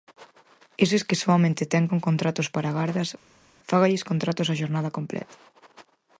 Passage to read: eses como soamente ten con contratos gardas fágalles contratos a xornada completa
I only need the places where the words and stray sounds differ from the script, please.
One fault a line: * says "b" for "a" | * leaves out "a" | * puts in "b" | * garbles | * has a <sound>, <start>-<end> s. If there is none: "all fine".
* says "que" for "como"
* puts in "para"